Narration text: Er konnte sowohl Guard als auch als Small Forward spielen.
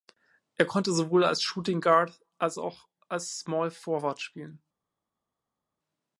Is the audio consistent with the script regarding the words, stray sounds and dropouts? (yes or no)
no